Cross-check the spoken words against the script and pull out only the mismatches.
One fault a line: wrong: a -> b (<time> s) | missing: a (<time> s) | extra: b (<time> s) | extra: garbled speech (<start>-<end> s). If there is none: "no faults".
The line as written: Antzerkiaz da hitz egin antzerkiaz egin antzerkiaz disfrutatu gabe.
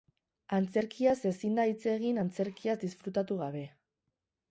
extra: ezin (1.3 s)
missing: egin antzerkiaz (2.8 s)